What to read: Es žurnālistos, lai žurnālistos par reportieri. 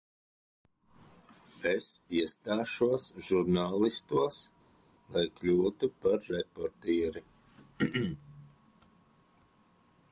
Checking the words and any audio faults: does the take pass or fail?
fail